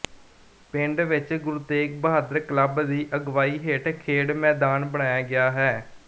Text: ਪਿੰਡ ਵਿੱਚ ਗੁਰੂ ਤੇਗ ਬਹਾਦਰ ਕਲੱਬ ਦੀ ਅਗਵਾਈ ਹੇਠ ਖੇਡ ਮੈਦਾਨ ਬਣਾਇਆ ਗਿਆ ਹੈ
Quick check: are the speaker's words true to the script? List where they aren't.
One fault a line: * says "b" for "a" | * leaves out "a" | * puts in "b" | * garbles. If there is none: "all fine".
all fine